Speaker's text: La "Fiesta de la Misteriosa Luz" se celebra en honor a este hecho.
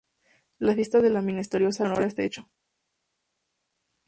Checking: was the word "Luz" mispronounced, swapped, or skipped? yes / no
yes